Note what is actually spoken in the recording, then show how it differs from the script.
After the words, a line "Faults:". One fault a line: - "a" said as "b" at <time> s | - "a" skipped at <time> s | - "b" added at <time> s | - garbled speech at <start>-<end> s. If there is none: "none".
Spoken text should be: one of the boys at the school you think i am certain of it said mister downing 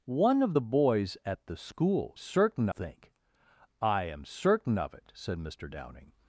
one of the boys at the school certain think i am certain of it said mister downing
Faults:
- "you" said as "certain" at 2.2 s